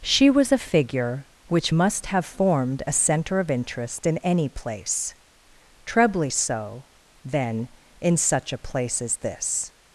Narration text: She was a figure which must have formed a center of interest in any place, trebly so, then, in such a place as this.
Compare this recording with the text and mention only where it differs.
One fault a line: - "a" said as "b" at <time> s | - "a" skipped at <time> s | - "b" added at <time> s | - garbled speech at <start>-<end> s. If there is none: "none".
none